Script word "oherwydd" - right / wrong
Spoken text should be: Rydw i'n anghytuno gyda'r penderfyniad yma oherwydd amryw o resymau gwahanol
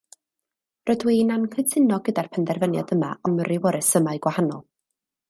wrong